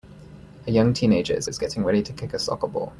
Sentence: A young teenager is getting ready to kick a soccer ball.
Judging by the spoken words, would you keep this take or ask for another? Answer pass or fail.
fail